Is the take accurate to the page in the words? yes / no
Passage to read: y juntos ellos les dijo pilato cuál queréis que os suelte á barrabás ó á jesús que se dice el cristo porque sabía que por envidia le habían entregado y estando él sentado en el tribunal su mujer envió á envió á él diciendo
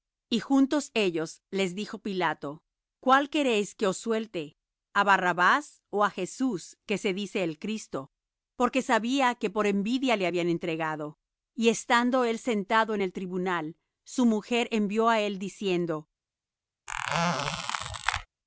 no